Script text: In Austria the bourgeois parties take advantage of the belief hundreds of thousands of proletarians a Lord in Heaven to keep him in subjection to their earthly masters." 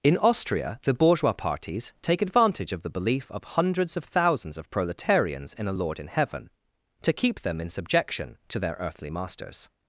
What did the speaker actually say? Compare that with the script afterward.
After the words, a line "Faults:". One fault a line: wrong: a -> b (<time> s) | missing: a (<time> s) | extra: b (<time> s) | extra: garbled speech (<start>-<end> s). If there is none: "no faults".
In Austria the bourgeois parties take advantage of the belief of hundreds of thousands of proletarians in a Lord in Heaven to keep them in subjection to their earthly masters."
Faults:
extra: of (3.3 s)
extra: in (5.5 s)
wrong: him -> them (7.4 s)